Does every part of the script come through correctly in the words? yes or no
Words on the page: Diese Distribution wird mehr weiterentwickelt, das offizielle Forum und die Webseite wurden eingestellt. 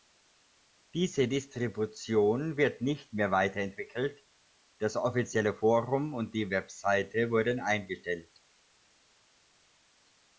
no